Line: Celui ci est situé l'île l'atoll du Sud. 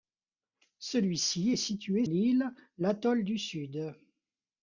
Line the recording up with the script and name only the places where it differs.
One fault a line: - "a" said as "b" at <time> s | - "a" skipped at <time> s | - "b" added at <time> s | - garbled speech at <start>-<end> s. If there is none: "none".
none